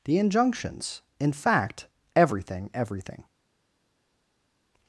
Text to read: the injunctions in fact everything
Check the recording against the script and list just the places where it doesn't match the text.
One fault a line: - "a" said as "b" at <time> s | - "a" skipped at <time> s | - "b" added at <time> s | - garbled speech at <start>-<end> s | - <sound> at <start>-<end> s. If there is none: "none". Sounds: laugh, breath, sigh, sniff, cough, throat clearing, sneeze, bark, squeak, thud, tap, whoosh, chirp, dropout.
- "everything" added at 2.7 s